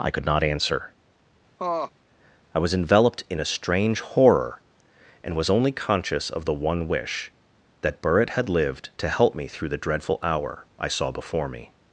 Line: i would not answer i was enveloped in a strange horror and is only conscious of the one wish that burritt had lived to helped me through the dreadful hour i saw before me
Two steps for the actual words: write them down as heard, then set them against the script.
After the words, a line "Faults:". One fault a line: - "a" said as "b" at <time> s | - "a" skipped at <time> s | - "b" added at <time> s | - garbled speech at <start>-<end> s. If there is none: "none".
i could not answer i was enveloped in a strange horror and was only conscious of the one wish that burritt had lived to help me through the dreadful hour i saw before me
Faults:
- "would" said as "could" at 0.1 s
- "is" said as "was" at 5.4 s
- "helped" said as "help" at 9.1 s